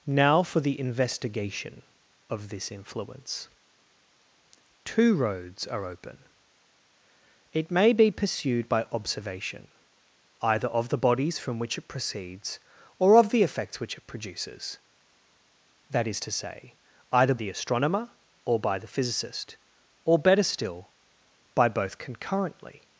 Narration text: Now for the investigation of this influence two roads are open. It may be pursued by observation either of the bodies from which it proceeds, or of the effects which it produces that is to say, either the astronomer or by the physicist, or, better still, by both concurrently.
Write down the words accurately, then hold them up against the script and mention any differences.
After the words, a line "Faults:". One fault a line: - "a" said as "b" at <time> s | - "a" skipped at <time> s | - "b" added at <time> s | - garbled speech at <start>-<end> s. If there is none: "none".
Now for the investigation of this influence two roads are open. It may be pursued by observation either of the bodies from which it proceeds, or of the effects which it produces that is to say, either the astronomer or by the physicist, or, better still, by both concurrently.
Faults:
none